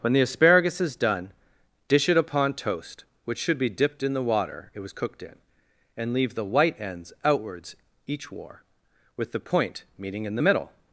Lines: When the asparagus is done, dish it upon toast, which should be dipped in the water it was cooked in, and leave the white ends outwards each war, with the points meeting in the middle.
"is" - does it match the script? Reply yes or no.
yes